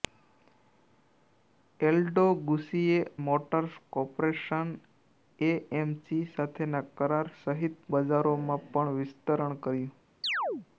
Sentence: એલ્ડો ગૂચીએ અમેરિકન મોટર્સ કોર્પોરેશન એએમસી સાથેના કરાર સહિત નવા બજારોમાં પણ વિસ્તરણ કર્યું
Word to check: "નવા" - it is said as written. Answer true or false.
false